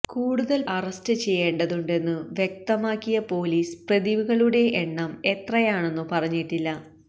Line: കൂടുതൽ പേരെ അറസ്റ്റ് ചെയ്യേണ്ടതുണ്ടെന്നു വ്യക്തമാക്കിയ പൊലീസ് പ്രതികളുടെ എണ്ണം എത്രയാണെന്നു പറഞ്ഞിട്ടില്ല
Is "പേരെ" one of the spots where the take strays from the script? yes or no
yes